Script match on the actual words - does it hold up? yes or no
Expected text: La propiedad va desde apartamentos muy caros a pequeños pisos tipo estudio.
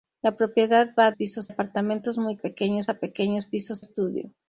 no